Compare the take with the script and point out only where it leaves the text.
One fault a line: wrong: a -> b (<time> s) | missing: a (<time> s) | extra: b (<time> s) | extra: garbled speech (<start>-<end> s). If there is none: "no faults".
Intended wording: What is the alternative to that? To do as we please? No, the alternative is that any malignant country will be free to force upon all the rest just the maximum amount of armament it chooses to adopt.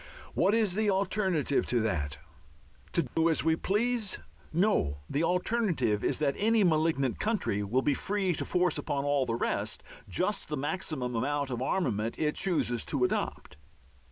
no faults